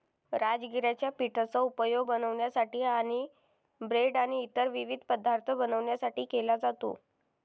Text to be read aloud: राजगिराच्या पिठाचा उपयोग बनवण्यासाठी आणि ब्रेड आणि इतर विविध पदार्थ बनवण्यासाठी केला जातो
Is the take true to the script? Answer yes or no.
yes